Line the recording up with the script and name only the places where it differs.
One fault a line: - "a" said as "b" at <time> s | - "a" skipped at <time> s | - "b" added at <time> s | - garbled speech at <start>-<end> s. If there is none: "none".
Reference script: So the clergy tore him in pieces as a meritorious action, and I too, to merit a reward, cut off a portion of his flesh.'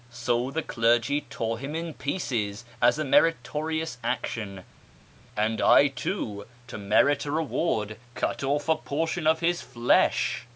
none